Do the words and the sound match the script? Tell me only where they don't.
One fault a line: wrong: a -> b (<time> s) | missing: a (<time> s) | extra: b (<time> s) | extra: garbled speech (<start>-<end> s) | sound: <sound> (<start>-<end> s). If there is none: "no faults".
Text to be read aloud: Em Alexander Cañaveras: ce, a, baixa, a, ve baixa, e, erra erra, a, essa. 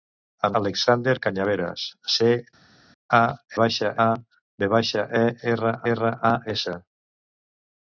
no faults